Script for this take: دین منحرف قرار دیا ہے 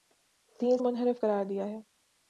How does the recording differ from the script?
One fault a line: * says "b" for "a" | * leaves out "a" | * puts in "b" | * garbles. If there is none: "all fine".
all fine